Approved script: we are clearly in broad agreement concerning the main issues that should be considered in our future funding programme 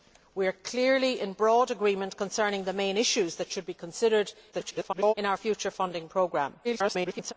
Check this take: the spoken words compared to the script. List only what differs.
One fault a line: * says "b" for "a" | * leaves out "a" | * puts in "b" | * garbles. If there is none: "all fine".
* garbles
* garbles